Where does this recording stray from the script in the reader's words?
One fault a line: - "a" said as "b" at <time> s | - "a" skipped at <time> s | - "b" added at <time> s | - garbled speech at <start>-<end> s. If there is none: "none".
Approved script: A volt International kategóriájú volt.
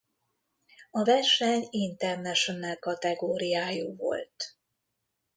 - "volt" said as "verseny" at 1.0 s